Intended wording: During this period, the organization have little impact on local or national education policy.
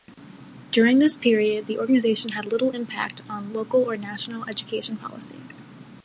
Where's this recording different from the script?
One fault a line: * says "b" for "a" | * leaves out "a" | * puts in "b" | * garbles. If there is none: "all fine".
* says "had" for "have"